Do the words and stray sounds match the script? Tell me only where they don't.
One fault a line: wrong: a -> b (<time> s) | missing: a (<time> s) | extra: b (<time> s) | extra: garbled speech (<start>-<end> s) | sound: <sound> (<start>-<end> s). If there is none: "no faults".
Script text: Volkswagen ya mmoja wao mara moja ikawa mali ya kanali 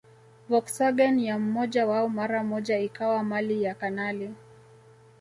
no faults